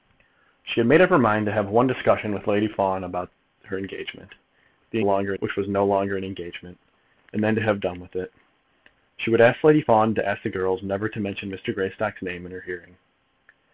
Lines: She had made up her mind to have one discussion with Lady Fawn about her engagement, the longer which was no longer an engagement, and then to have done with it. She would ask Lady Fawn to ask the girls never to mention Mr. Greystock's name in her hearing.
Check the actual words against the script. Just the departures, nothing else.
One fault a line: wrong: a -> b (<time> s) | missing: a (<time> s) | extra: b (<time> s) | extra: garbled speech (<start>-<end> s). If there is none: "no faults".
no faults